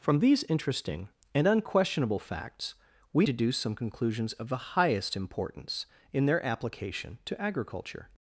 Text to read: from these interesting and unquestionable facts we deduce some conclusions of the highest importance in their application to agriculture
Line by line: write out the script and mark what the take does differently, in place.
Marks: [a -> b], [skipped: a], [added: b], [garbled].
from these interesting and unquestionable facts we deduce some conclusions of the highest importance in their application to agriculture